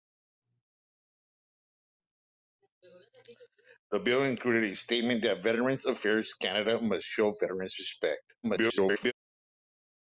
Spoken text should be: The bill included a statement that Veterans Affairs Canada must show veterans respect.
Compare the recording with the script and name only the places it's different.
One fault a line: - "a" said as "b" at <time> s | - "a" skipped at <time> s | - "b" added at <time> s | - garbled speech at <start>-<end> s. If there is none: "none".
- garbled speech at 8.4-9.1 s